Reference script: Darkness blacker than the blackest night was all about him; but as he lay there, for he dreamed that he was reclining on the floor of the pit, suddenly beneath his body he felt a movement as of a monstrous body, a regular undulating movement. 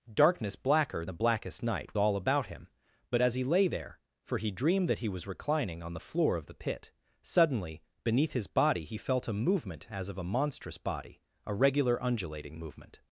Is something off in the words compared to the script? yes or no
yes